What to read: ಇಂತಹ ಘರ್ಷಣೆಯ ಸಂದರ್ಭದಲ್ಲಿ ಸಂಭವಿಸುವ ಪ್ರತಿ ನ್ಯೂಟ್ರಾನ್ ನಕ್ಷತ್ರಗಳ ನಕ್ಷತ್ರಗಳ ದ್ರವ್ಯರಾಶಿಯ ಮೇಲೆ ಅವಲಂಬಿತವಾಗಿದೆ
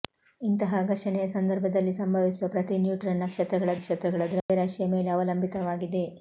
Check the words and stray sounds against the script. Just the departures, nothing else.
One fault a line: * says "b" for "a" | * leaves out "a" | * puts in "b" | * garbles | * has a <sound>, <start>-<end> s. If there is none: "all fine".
* has a dropout, 4.4-4.5 s